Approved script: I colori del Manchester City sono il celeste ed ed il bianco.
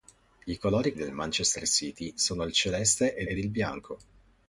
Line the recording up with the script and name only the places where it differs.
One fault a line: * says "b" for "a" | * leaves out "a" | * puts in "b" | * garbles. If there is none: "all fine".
all fine